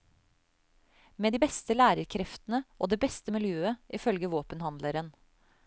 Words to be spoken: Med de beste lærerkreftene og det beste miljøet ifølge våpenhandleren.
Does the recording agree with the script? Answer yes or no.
yes